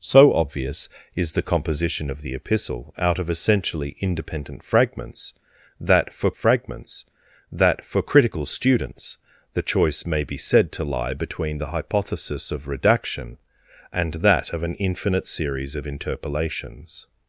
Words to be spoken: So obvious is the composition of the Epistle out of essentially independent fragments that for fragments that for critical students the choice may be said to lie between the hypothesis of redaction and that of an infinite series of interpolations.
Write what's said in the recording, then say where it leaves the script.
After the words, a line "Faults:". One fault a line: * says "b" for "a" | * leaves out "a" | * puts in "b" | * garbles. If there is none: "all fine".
So obvious is the composition of the Epistle out of essentially independent fragments that for fragments that for critical students the choice may be said to lie between the hypothesis of redaction and that of an infinite series of interpolations.
Faults:
all fine